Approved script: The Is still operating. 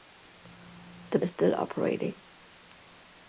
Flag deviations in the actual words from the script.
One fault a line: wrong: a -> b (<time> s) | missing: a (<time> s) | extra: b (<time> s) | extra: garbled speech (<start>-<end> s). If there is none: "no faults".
no faults